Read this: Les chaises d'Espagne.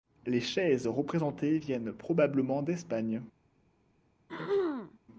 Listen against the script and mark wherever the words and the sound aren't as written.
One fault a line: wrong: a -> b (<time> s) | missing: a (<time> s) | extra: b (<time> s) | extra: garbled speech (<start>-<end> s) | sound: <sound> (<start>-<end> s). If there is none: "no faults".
extra: représentées viennent probablement (0.8 s)
sound: throat clearing (4.3-5.0 s)